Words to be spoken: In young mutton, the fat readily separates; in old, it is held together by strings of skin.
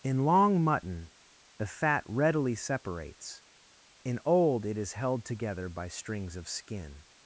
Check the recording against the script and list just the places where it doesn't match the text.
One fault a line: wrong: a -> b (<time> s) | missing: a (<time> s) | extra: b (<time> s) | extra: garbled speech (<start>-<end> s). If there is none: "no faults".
wrong: young -> long (0.2 s)